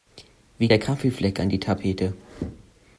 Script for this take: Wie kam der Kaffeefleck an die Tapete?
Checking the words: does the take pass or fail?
fail